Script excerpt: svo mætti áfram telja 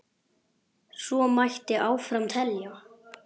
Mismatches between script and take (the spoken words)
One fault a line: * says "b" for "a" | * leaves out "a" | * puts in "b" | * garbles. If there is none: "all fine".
all fine